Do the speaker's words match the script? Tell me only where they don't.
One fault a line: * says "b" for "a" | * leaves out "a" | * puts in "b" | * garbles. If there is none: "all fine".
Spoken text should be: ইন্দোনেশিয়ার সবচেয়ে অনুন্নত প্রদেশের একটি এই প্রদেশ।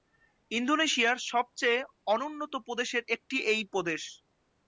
all fine